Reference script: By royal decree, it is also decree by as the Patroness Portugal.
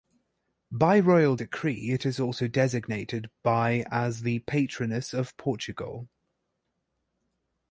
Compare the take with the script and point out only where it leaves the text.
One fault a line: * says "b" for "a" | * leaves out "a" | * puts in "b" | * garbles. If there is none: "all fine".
* says "designated" for "decree"
* puts in "of"